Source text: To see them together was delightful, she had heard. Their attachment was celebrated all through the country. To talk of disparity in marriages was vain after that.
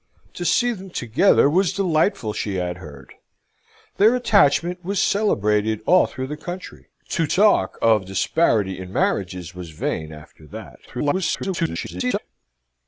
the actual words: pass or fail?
fail